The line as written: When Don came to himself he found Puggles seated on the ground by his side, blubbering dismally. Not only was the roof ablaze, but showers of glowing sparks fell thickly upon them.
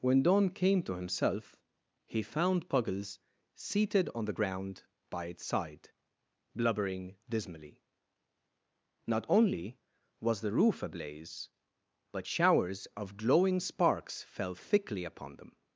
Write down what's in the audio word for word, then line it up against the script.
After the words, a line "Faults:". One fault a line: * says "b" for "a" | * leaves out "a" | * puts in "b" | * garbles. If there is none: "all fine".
When Don came to himself he found Puggles seated on the ground by its side, blubbering dismally. Not only was the roof ablaze, but showers of glowing sparks fell thickly upon them.
Faults:
* says "its" for "his"